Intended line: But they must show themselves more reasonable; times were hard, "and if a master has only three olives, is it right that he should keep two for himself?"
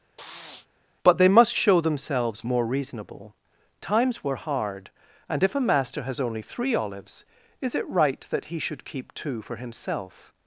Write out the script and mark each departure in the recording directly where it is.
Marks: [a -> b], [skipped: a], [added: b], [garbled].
But they must show themselves more reasonable; times were hard, "and if a master has only three olives, is it right that he should keep two for himself?"